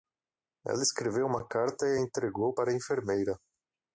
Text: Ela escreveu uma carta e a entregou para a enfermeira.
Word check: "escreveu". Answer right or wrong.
right